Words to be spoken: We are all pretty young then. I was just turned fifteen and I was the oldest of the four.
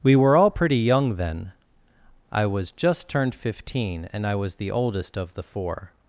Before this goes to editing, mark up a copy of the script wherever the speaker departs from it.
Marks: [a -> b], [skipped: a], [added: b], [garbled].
We [are -> were] all pretty young then. I was just turned fifteen and I was the oldest of the four.